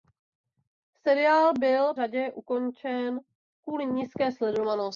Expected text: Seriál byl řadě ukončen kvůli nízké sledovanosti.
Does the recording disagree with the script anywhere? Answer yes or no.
no